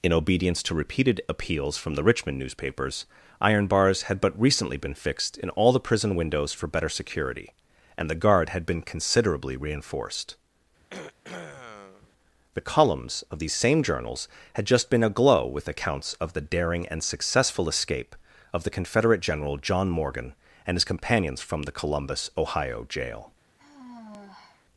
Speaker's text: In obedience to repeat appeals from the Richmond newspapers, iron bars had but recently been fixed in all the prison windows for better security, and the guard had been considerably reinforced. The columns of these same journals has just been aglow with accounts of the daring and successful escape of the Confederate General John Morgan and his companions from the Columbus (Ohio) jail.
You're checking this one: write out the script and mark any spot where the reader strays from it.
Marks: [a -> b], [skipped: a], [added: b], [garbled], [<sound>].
In obedience to [repeat -> repeated] appeals from the Richmond newspapers, iron bars had but recently been fixed in all the prison windows for better security, and the guard had been considerably reinforced. [throat clearing] The columns of these same journals [has -> had] just been aglow with accounts of the daring and successful escape of the Confederate General John Morgan and his companions from the Columbus (Ohio) jail. [sigh]